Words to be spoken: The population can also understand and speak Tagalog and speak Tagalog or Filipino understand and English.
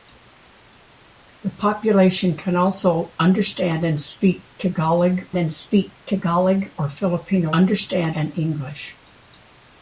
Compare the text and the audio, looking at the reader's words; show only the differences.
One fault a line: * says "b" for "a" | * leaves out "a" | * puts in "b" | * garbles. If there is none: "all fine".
all fine